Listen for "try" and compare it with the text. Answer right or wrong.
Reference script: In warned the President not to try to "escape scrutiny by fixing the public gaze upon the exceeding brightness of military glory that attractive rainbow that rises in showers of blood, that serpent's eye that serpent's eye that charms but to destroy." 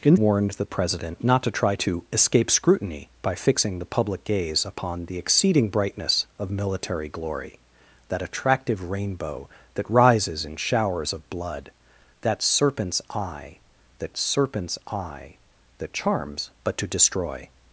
right